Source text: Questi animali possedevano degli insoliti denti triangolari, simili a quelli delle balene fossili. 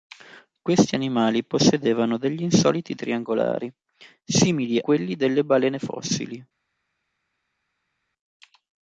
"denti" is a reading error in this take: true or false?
true